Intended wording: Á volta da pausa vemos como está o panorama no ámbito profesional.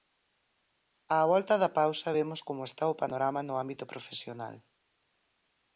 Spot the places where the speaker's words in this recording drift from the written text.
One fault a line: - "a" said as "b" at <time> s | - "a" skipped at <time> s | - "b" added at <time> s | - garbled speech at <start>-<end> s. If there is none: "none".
none